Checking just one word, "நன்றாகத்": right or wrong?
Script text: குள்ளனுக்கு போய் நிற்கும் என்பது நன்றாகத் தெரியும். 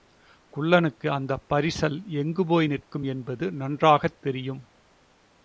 right